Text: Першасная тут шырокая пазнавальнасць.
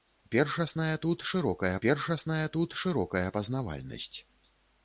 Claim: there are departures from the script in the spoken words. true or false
true